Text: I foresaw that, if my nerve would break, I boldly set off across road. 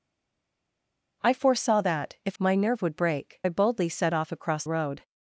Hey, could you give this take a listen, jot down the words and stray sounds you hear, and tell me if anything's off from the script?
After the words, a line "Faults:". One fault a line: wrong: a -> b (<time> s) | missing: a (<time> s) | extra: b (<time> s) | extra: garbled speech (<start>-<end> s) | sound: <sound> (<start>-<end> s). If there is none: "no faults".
I foresaw that, if my nerve would break, I boldly set off across road.
Faults:
no faults